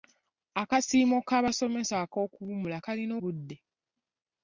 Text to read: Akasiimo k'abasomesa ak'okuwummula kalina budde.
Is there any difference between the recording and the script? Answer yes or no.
no